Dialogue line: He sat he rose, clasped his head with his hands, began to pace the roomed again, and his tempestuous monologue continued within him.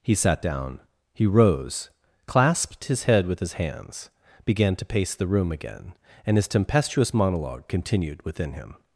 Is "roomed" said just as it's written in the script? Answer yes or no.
no